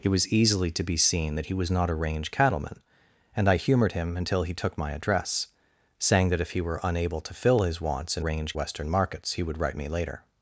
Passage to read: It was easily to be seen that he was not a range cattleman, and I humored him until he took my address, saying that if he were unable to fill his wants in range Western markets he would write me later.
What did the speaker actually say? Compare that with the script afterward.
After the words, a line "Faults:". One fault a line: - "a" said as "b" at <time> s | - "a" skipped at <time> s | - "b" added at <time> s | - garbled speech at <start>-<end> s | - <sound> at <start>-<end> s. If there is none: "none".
It was easily to be seen that he was not a range cattleman, and I humored him until he took my address, saying that if he were unable to fill his wants in range Western markets he would write me later.
Faults:
none